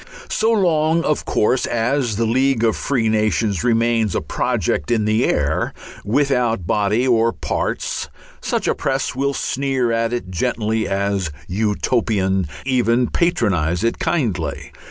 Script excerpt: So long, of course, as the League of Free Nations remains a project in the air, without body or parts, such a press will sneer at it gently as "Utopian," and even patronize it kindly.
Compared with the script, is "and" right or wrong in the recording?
wrong